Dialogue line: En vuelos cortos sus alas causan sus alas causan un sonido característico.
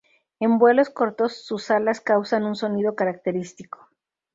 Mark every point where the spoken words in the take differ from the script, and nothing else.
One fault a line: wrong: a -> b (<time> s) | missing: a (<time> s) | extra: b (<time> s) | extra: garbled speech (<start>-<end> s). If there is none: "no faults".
missing: sus alas causan (2.4 s)